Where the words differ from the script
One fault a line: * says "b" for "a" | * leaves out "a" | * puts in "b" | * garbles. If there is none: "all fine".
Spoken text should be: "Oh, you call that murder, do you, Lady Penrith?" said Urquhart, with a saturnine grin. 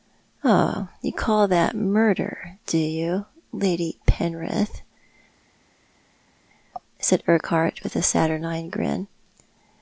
all fine